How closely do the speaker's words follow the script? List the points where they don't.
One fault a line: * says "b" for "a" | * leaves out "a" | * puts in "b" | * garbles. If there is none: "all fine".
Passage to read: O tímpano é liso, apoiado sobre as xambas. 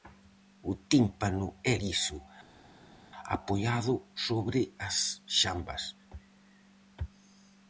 all fine